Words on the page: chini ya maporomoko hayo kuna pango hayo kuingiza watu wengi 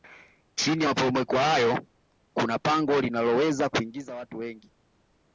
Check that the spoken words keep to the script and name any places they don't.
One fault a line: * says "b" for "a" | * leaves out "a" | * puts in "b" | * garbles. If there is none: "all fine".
* says "linaloweza" for "hayo"